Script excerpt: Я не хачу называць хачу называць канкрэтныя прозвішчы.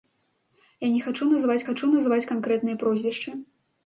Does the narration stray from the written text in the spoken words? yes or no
no